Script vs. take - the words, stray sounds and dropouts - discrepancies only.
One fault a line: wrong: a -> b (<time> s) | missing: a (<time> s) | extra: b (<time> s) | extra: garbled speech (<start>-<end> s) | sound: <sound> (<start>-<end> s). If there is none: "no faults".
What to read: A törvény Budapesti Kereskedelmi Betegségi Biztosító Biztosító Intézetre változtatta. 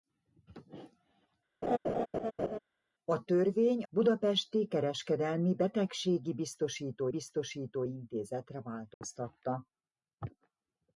sound: laugh (1.6-2.6 s)
sound: dropout (8.9-9.0 s)